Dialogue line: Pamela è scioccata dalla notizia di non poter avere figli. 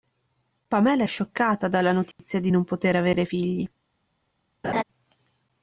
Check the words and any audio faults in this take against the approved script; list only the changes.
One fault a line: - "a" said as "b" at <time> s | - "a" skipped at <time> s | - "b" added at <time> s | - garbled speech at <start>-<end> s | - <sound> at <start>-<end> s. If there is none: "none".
- dropout at 2.1-2.2 s
- laugh at 4.6-4.8 s